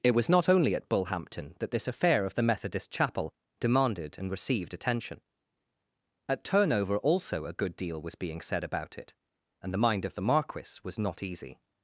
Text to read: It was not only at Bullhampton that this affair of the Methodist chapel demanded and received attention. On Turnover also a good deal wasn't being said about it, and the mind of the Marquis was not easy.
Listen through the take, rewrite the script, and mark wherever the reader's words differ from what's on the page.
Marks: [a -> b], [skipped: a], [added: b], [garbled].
It was not only at Bullhampton that this affair of the Methodist chapel demanded and received attention. [On -> At] Turnover also a good deal [wasn't -> was] being said about it, and the mind of the Marquis was not easy.